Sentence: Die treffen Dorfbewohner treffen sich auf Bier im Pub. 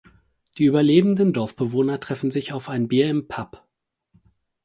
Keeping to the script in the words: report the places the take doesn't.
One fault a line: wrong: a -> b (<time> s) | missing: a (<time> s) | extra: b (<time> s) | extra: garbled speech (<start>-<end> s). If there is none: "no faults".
wrong: treffen -> überlebenden (0.7 s)
extra: ein (2.7 s)